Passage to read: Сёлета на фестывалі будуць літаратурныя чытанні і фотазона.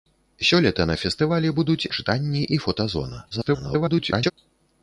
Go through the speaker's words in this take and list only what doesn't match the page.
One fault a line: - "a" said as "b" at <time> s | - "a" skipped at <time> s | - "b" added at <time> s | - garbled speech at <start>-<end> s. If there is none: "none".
- "літаратурныя" skipped at 1.9 s
- garbled speech at 3.3-4.3 s